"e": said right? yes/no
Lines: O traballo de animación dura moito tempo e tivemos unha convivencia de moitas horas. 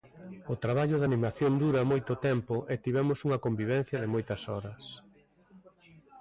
yes